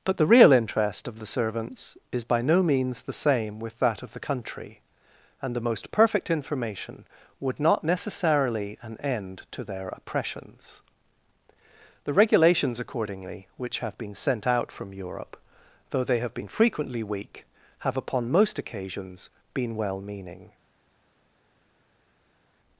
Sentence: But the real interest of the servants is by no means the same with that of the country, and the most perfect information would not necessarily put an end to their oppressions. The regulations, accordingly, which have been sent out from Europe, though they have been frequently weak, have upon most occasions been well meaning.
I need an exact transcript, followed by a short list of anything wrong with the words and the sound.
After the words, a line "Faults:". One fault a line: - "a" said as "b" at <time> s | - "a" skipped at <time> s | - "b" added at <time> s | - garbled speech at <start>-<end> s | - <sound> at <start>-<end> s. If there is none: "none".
But the real interest of the servants is by no means the same with that of the country, and the most perfect information would not necessarily an end to their oppressions. The regulations, accordingly, which have been sent out from Europe, though they have been frequently weak, have upon most occasions been well meaning.
Faults:
- "put" skipped at 8.8 s